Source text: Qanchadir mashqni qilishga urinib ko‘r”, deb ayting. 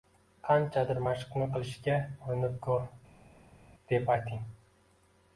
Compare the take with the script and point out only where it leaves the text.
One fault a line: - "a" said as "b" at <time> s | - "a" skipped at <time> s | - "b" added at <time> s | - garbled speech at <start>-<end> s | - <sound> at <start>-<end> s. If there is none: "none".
none